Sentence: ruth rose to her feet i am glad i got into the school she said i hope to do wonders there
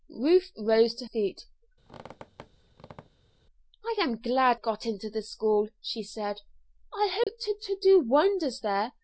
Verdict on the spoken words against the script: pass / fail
fail